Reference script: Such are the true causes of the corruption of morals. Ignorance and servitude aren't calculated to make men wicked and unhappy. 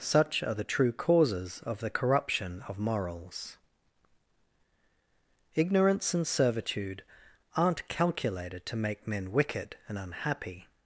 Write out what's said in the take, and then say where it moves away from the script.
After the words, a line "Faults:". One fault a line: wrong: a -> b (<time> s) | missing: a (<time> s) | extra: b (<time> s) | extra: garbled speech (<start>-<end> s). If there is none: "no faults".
Such are the true causes of the corruption of morals. Ignorance and servitude aren't calculated to make men wicked and unhappy.
Faults:
no faults